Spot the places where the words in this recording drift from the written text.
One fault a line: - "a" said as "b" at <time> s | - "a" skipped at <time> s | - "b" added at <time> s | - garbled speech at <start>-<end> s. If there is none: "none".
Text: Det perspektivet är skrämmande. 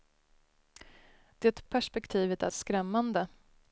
none